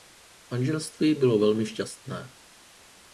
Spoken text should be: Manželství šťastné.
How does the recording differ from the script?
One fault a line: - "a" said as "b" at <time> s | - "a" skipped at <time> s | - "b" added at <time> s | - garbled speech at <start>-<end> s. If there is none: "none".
- "bylo velmi" added at 1.1 s